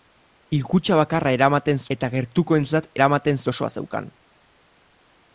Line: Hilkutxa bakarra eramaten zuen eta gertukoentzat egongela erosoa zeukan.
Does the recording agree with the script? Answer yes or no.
no